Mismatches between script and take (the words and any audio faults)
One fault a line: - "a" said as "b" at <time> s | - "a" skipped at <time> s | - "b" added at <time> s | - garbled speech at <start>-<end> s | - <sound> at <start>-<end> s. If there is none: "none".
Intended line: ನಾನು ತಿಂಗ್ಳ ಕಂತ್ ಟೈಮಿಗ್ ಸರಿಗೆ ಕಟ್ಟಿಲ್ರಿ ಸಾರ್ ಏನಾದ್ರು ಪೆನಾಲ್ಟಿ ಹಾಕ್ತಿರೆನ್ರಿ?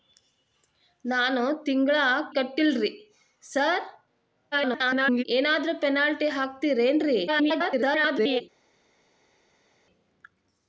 - "ಕಂತ್ ಟೈಮಿಗ್ ಸರಿಗೆ" skipped at 1.9 s
- garbled speech at 4.5-5.2 s
- garbled speech at 7.3-8.4 s